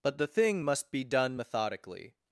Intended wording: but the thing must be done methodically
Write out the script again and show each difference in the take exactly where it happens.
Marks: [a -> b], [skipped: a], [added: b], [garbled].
but the thing must be done methodically